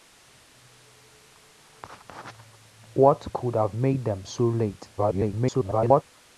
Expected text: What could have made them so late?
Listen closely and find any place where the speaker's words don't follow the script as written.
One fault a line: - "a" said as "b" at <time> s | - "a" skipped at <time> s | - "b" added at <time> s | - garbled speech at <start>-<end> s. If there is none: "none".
- garbled speech at 5.0-6.0 s